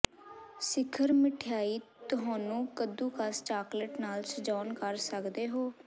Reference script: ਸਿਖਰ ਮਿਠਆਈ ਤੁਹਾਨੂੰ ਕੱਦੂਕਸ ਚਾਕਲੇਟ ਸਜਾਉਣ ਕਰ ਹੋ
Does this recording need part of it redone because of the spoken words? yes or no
yes